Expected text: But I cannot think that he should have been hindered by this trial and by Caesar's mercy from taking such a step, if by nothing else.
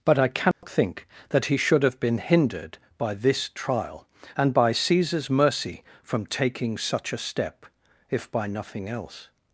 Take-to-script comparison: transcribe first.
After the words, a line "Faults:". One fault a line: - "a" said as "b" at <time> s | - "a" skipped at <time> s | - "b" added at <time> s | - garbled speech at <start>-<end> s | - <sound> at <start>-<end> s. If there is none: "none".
But I cannot think that he should have been hindered by this trial and by Caesar's mercy from taking such a step, if by nothing else.
Faults:
- dropout at 0.5-0.6 s